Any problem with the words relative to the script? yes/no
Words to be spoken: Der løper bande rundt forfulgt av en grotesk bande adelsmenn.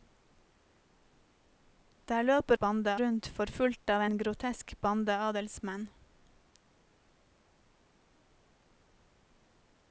no